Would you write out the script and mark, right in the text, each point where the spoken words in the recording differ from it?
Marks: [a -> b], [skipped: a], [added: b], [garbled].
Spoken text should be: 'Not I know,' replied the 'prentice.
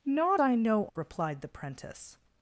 'Not I know,' replied the 'prentice.